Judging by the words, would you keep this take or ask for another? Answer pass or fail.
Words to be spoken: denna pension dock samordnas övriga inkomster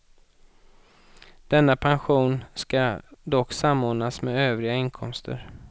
fail